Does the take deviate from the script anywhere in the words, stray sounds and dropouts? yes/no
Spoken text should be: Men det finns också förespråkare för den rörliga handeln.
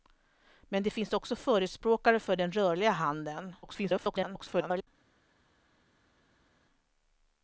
yes